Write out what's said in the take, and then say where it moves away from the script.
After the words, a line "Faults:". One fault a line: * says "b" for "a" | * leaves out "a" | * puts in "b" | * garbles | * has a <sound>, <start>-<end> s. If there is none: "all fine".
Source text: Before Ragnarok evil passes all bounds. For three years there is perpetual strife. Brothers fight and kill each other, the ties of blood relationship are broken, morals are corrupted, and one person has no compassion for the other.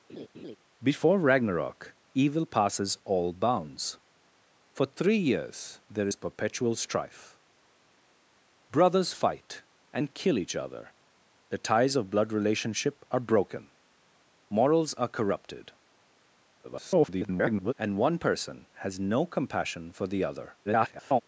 Before Ragnarok evil passes all bounds. For three years there is perpetual strife. Brothers fight and kill each other, the ties of blood relationship are broken, morals are corrupted, [garbled] and one person has no compassion for the other. [garbled]
Faults:
* has a laugh, 0.1-0.6 s
* garbles
* garbles